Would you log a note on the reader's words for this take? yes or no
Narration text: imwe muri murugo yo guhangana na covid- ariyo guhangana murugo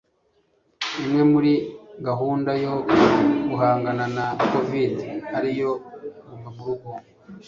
yes